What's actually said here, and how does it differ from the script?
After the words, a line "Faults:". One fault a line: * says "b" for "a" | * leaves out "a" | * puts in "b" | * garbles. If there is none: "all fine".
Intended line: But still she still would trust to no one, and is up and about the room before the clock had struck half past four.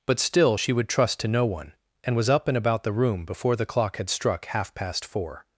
But still she would trust to no one, and was up and about the room before the clock had struck half past four.
Faults:
* leaves out "still"
* says "was" for "is"